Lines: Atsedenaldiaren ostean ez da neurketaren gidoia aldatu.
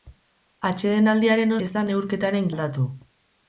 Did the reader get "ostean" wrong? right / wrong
wrong